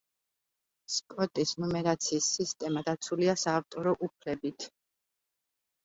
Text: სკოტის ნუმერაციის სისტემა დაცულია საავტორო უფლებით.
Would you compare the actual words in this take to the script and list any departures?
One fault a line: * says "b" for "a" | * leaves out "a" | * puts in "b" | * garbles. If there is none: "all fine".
all fine